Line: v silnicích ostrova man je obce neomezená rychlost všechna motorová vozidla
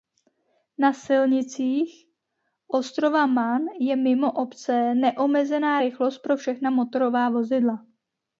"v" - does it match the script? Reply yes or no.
no